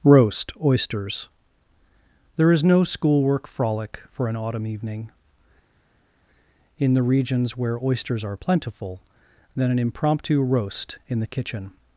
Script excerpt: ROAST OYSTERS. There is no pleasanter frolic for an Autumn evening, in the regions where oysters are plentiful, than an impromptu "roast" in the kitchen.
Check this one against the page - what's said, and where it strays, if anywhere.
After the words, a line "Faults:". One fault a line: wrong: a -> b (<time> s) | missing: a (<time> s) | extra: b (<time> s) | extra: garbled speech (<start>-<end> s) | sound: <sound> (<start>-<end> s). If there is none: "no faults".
ROAST OYSTERS. There is no schoolwork frolic for an Autumn evening, in the regions where oysters are plentiful, than an impromptu "roast" in the kitchen.
Faults:
wrong: pleasanter -> schoolwork (2.8 s)